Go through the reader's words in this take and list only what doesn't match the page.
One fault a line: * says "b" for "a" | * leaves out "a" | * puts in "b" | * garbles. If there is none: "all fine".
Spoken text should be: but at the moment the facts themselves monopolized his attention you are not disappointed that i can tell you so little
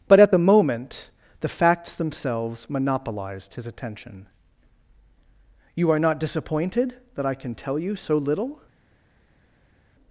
all fine